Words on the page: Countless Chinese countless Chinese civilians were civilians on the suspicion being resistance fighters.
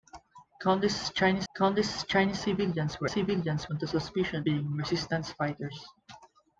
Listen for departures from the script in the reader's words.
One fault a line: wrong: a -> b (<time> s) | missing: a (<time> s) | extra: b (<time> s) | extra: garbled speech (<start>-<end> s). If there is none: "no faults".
no faults